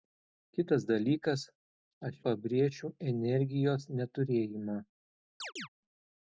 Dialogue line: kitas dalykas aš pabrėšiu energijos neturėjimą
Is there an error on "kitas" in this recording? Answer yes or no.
no